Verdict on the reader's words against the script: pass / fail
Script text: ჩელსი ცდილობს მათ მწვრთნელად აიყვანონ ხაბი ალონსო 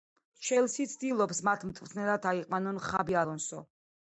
pass